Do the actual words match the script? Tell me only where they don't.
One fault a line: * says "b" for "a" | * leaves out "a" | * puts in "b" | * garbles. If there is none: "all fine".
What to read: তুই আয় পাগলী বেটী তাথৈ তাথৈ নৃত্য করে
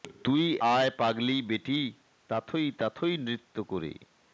all fine